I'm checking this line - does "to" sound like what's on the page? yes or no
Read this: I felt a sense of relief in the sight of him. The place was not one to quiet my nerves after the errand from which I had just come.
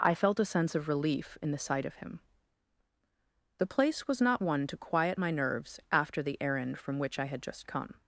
yes